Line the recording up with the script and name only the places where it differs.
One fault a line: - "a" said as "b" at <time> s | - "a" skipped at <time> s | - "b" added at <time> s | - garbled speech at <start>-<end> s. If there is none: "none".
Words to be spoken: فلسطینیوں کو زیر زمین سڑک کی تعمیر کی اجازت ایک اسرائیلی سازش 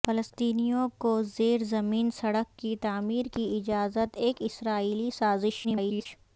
- garbled speech at 5.6-6.1 s